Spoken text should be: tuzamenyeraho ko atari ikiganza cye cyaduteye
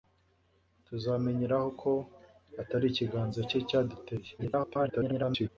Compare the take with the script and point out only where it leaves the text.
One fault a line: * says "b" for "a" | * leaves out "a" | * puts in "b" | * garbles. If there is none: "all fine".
* garbles